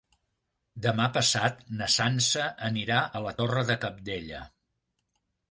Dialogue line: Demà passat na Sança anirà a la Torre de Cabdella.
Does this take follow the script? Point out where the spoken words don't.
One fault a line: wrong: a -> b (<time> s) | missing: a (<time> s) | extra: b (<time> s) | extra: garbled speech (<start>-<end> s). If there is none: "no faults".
no faults